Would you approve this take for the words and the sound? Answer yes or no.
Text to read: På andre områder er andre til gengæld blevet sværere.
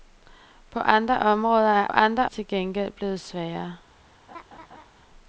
no